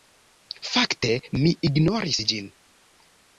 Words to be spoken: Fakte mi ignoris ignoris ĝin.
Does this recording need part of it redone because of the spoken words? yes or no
yes